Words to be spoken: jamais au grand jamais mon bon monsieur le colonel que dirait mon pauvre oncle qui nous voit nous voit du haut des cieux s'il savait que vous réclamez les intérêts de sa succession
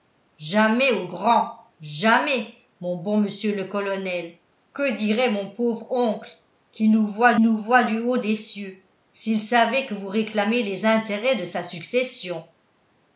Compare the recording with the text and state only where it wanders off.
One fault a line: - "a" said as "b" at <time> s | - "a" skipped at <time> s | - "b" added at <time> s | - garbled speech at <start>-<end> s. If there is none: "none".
none